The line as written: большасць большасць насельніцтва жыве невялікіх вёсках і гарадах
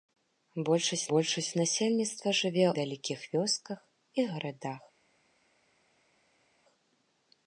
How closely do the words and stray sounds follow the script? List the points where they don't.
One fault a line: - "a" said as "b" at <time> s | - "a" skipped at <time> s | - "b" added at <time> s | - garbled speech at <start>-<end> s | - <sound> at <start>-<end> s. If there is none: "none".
none